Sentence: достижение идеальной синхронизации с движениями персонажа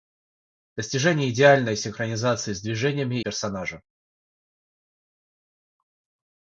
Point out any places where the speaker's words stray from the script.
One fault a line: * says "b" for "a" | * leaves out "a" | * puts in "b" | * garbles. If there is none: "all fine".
all fine